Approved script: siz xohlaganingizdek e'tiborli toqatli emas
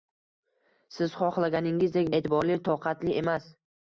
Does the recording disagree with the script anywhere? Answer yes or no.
no